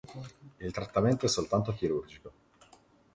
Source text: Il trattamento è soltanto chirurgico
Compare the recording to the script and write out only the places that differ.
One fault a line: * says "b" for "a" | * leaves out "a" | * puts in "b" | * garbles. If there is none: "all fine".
all fine